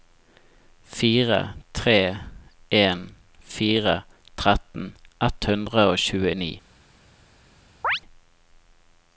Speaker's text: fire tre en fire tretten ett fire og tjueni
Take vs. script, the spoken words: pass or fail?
fail